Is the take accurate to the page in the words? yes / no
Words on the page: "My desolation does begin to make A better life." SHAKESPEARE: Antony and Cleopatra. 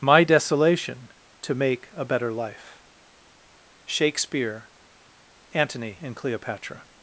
no